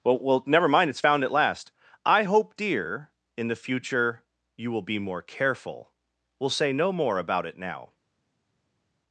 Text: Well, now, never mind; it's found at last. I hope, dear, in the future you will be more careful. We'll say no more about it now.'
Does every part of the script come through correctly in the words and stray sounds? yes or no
no